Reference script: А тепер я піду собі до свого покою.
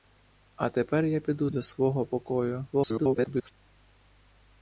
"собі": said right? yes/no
no